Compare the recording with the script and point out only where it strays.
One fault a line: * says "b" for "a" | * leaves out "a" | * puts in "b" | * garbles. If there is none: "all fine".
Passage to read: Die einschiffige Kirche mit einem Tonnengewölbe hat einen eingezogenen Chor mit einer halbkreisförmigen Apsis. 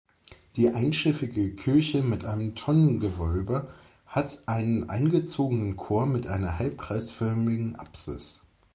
all fine